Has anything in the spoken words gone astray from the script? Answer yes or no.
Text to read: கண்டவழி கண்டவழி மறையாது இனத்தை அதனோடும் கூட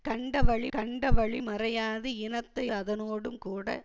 no